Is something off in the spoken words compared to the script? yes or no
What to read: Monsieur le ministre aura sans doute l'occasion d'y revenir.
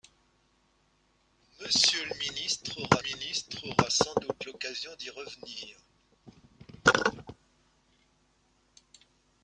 yes